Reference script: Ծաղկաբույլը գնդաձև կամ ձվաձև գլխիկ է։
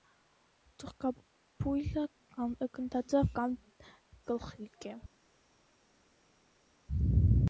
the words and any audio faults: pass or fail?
fail